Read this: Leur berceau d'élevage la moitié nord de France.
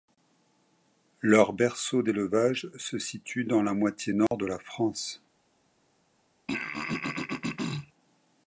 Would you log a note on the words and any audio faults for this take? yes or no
yes